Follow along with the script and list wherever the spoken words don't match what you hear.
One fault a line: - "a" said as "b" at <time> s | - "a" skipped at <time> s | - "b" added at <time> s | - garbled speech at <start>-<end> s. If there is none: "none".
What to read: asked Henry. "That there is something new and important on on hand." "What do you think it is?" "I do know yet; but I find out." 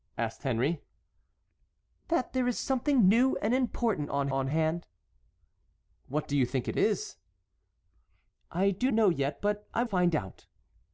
none